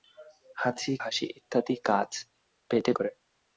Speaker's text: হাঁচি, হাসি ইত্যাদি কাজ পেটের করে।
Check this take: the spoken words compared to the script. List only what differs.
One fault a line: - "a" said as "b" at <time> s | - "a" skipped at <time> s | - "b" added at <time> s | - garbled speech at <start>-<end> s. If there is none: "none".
none